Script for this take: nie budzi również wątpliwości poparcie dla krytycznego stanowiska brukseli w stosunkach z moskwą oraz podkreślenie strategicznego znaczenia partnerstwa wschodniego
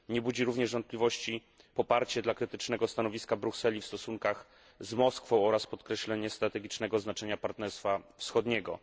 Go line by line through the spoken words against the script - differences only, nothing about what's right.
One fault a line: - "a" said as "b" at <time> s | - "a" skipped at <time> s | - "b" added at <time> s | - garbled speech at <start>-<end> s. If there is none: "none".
none